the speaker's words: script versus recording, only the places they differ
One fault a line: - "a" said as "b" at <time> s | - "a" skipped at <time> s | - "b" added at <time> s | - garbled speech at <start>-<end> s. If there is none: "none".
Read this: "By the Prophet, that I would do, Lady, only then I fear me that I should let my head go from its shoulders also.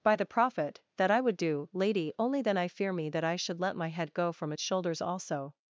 none